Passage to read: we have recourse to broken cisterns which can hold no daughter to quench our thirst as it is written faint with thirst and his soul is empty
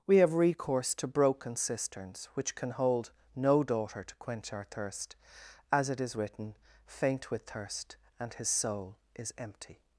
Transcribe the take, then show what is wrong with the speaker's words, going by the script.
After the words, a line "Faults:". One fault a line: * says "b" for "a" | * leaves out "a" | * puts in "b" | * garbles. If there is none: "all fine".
we have recourse to broken cisterns which can hold no daughter to quench our thirst as it is written faint with thirst and his soul is empty
Faults:
all fine